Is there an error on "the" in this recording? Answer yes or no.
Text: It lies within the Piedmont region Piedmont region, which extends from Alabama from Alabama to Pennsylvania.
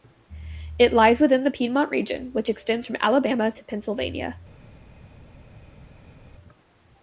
no